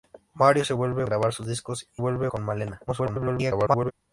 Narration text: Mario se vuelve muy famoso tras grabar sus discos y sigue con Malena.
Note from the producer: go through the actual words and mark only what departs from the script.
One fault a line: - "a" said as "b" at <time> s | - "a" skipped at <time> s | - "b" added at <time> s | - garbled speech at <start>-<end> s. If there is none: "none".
- "muy famoso tras" skipped at 1.1 s
- "sigue" said as "vuelve" at 2.0 s
- garbled speech at 2.9-3.9 s